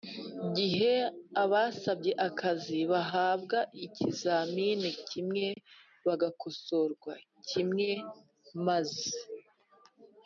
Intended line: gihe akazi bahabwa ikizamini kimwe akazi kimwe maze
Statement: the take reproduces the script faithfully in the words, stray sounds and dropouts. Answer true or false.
false